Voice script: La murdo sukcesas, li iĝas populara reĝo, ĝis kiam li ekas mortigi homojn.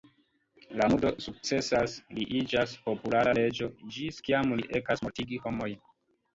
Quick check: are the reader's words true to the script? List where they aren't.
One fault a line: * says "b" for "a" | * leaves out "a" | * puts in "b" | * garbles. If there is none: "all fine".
all fine